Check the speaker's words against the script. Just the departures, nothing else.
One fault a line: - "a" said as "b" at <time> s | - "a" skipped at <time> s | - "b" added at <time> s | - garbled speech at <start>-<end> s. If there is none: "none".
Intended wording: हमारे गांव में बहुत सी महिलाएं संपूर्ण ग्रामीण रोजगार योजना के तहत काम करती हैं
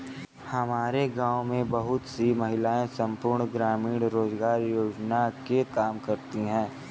- "तहत" skipped at 5.6 s